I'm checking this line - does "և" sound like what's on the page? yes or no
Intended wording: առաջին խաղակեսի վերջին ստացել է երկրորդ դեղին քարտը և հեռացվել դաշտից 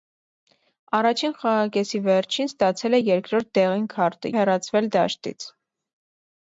no